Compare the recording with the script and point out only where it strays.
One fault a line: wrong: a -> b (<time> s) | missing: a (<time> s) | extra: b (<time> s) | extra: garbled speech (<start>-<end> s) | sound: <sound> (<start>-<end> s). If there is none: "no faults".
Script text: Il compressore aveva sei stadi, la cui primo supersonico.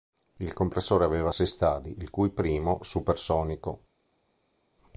wrong: la -> il (2.0 s)